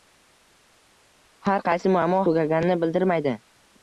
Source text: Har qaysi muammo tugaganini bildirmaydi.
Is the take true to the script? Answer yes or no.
yes